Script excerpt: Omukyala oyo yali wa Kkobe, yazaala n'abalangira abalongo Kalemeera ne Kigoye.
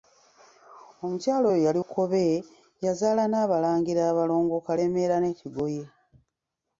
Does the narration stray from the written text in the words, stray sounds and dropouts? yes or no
yes